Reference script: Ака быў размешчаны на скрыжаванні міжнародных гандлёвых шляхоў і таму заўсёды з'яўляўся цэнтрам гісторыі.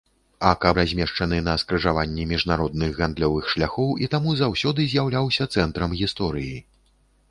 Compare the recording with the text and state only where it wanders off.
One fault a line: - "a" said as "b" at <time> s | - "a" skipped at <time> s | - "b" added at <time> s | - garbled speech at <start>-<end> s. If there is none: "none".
- "быў" skipped at 0.7 s